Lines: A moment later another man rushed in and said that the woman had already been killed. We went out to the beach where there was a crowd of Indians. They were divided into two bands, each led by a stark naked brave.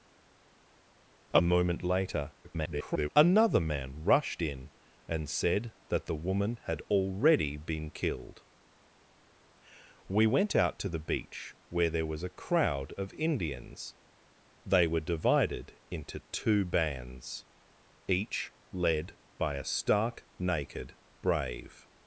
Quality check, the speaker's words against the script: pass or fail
fail